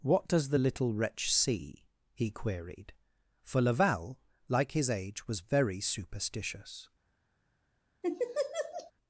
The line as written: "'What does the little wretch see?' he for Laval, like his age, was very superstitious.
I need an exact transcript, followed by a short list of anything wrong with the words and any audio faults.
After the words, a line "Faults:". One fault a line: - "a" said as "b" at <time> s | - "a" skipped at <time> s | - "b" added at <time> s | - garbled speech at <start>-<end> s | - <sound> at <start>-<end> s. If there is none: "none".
"'What does the little wretch see?' he queried, for Laval, like his age, was very superstitious.
Faults:
- "queried" added at 2.3 s
- laugh at 8.0-8.9 s